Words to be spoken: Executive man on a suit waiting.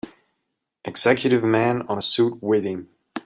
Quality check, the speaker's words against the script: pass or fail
pass